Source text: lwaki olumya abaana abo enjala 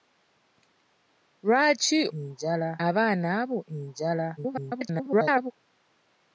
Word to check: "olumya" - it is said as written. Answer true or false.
false